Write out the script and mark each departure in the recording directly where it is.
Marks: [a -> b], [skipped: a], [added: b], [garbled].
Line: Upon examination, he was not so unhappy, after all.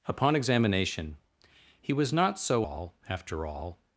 Upon examination, he was not so [unhappy, -> all] after all.